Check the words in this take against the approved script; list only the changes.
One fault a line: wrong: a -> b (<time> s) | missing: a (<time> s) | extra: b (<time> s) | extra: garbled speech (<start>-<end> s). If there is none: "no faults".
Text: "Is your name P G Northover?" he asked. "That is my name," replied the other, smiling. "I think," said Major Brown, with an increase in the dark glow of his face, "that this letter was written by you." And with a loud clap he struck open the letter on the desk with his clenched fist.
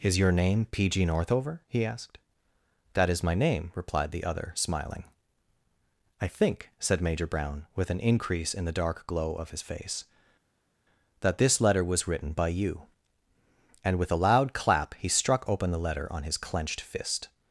missing: the desk with (16.2 s)